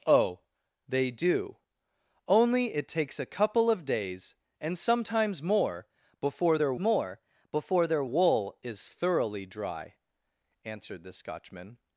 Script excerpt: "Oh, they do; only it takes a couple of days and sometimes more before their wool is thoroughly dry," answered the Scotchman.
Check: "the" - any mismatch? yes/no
no